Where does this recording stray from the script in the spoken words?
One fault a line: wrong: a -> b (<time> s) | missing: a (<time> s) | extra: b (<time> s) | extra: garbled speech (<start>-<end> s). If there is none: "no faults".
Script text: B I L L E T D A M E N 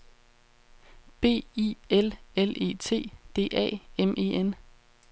no faults